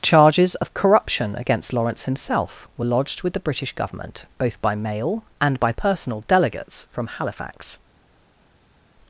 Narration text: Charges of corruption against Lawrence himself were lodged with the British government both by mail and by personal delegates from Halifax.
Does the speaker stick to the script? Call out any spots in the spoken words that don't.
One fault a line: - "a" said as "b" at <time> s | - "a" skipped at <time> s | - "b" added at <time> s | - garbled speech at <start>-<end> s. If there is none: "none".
none